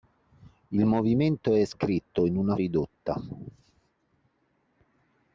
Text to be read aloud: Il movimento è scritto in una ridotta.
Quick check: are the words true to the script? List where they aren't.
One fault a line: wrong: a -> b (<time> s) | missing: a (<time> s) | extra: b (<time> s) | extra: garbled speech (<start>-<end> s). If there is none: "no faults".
no faults